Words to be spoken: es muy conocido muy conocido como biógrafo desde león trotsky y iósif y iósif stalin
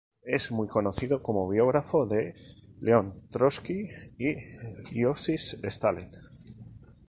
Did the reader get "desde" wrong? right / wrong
wrong